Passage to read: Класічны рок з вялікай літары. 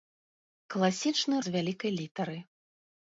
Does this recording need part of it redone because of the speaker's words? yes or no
yes